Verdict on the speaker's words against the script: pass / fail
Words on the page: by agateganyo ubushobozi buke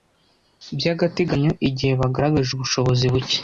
fail